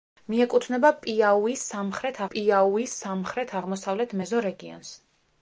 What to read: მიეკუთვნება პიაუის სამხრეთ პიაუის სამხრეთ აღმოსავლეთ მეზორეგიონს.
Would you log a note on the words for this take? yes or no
no